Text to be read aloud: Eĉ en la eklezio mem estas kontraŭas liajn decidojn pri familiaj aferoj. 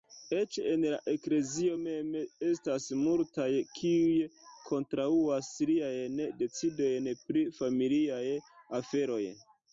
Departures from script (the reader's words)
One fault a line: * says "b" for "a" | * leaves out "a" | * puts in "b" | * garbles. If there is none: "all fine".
* puts in "multaj kiuj"